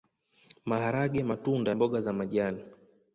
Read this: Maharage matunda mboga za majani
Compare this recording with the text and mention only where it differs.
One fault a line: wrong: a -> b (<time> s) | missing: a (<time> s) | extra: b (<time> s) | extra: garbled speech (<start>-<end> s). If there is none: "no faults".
no faults